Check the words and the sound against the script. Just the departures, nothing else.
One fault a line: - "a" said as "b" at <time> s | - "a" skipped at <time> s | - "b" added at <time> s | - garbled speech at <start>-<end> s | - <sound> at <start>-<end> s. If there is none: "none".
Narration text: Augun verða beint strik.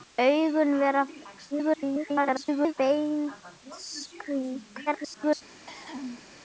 - garbled speech at 1.5-2.7 s
- garbled speech at 4.9-5.4 s
- cough at 5.5-6.2 s